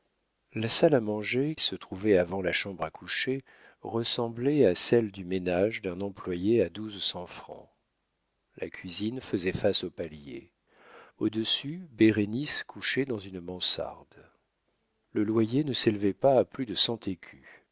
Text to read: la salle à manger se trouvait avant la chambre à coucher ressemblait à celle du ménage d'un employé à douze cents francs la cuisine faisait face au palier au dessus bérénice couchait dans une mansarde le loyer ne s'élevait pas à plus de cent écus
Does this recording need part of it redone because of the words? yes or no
no